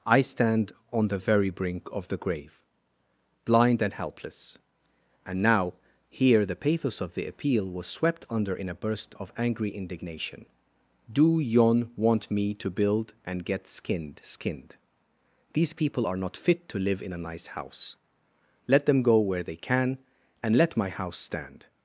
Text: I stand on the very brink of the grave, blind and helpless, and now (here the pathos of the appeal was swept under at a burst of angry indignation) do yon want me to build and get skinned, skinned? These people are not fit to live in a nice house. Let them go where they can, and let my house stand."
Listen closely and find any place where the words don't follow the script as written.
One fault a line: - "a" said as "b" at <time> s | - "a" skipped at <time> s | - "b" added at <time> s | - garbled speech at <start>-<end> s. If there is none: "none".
- "at" said as "in" at 8.6 s